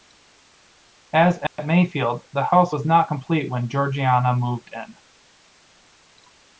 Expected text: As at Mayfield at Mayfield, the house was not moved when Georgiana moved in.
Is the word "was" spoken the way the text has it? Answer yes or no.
yes